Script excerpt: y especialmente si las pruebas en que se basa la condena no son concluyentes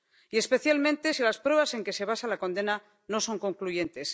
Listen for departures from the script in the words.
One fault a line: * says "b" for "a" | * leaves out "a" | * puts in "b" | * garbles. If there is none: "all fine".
all fine